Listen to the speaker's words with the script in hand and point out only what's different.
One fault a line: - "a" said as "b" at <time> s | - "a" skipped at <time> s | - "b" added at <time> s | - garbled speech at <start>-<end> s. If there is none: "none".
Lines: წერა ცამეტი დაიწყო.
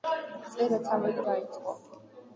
none